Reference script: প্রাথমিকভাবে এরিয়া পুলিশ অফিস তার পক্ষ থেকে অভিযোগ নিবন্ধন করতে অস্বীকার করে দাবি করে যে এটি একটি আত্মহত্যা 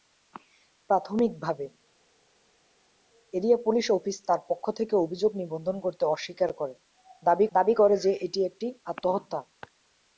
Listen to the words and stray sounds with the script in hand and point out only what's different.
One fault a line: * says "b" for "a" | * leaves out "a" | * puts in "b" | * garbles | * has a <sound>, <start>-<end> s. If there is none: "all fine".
* puts in "দাবি"